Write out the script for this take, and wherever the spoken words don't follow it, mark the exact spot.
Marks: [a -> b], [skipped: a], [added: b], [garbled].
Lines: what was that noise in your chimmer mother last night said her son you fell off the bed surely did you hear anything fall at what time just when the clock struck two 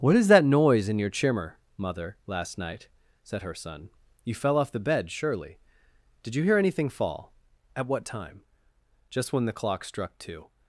what [was -> is] that noise in your chimmer mother last night said her son you fell off the bed surely did you hear anything fall at what time just when the clock struck two